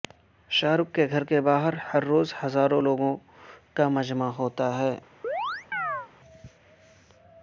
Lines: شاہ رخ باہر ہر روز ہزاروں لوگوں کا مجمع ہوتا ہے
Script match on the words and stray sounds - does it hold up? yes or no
no